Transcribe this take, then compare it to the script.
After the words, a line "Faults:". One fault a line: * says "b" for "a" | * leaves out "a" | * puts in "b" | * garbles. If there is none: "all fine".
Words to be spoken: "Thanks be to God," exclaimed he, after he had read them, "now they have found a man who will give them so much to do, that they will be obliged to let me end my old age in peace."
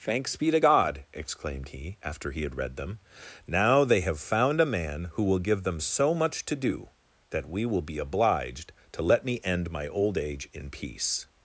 "Thanks be to God," exclaimed he, after he had read them, "now they have found a man who will give them so much to do, that we will be obliged to let me end my old age in peace."
Faults:
* says "we" for "they"